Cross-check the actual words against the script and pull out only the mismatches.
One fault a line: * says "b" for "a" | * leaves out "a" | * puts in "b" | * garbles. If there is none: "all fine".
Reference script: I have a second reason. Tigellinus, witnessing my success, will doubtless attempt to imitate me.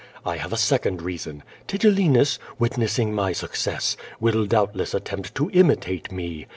all fine